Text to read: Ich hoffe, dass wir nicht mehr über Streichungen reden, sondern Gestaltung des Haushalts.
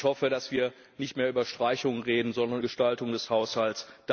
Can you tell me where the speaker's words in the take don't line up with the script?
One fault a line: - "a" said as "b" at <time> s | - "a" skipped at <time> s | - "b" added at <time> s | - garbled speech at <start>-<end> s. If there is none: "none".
none